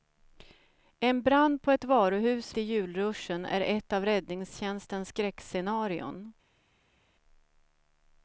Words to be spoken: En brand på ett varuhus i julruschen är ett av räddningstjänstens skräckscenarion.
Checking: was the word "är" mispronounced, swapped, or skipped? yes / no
no